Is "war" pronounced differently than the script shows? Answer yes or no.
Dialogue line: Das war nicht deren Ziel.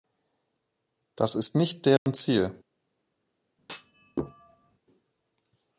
yes